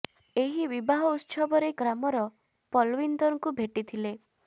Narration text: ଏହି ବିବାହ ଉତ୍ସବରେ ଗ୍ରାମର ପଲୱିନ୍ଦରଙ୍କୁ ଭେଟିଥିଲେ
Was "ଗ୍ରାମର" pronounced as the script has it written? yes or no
yes